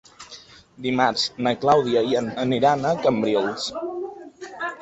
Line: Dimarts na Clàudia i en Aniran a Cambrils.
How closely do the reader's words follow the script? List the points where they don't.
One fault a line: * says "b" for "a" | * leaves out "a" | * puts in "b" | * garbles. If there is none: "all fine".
all fine